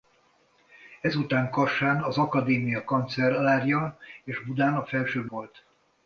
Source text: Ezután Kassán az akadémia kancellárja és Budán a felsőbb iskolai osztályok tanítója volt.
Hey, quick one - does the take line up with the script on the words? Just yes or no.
no